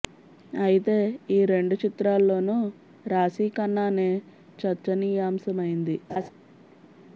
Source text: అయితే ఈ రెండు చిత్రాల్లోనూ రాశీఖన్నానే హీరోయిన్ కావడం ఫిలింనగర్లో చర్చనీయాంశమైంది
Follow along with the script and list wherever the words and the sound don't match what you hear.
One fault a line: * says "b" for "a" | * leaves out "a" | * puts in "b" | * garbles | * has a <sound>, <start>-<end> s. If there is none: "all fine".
* leaves out "హీరోయిన్ కావడం ఫిలింనగర్లో"
* has a laugh, 6.1-6.3 s